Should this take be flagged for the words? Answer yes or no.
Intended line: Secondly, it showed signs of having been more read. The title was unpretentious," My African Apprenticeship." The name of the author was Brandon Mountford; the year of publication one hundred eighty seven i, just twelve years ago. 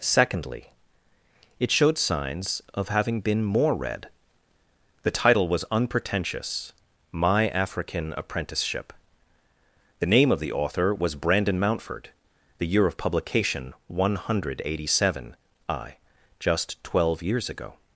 no